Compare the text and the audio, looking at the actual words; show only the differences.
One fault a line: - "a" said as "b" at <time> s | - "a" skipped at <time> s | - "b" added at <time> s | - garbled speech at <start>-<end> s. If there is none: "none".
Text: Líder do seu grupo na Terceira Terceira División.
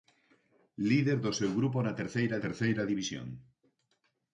none